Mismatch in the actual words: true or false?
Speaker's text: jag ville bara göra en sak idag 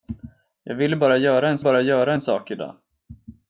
true